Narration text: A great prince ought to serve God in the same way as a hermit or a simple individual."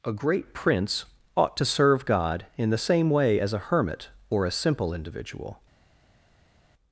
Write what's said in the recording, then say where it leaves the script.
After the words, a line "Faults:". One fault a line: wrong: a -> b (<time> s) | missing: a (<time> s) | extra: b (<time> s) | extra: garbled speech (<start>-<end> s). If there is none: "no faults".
A great prince ought to serve God in the same way as a hermit or a simple individual."
Faults:
no faults